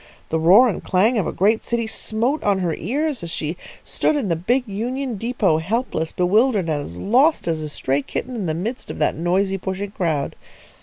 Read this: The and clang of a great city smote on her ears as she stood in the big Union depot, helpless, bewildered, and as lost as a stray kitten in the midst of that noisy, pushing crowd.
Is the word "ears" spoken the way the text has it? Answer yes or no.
yes